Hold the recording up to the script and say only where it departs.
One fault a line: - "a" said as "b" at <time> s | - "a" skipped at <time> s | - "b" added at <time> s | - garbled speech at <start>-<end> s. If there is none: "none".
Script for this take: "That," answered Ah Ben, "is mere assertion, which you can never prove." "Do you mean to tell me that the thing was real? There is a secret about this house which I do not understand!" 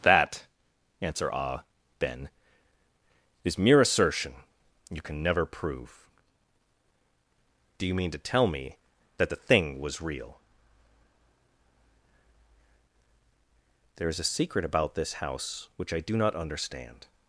- "answered" said as "answer" at 1.0 s
- "which" skipped at 4.3 s